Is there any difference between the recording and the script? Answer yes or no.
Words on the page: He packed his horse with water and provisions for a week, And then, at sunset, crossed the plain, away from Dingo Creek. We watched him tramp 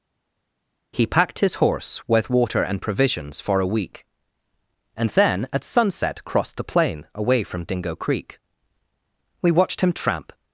no